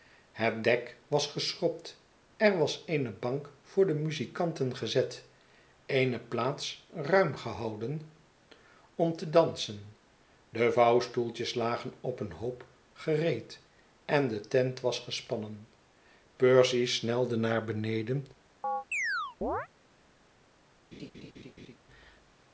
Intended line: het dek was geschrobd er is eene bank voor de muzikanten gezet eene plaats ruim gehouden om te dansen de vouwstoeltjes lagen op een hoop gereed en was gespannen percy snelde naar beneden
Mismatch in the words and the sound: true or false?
true